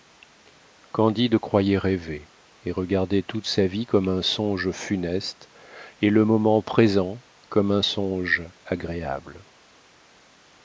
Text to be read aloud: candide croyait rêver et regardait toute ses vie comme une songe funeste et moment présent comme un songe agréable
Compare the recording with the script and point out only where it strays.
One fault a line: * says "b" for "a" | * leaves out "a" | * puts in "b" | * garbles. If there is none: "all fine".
* says "sa" for "ses"
* says "un" for "une"
* puts in "le"